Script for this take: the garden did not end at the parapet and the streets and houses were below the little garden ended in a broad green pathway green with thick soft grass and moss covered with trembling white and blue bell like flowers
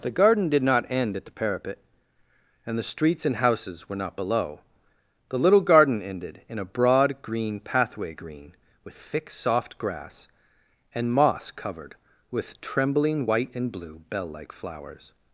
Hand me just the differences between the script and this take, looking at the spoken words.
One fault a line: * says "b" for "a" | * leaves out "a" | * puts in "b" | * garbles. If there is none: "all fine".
* puts in "not"